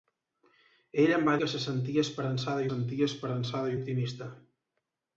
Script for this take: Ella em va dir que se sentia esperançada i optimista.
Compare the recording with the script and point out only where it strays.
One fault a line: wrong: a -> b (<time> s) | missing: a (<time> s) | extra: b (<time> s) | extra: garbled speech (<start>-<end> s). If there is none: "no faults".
missing: dir (1.4 s)
extra: sentia esperançada (2.7 s)